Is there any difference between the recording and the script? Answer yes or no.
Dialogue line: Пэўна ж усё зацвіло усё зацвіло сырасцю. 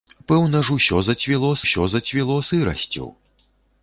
no